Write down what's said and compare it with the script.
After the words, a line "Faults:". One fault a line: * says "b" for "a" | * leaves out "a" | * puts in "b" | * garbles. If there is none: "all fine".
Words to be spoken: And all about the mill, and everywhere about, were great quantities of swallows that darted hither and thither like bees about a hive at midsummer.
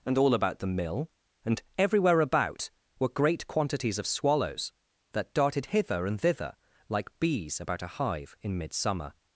And all about the mill, and everywhere about, were great quantities of swallows that darted hither and thither like bees about a hive in midsummer.
Faults:
* says "in" for "at"